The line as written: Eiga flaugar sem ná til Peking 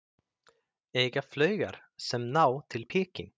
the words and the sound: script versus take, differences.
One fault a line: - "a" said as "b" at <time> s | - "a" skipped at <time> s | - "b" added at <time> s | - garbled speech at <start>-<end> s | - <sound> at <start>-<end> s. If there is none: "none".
none